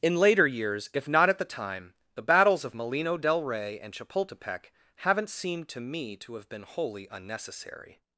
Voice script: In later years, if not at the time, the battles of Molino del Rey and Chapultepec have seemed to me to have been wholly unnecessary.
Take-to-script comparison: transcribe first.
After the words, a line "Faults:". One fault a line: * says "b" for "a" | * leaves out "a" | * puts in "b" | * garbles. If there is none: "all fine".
In later years, if not at the time, the battles of Molino del Rey and Chapultepec haven't seemed to me to have been wholly unnecessary.
Faults:
* says "haven't" for "have"